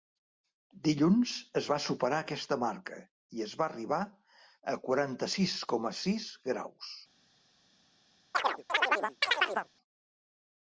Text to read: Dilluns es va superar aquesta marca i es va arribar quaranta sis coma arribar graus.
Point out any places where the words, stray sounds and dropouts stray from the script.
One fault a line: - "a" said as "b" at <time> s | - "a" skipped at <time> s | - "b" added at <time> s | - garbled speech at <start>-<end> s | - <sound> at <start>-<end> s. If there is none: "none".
- "a" added at 4.1 s
- "arribar" said as "sis" at 6.1 s
- chirp at 8.3-9.7 s